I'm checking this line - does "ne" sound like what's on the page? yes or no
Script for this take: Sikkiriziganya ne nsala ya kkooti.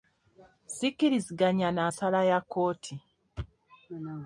no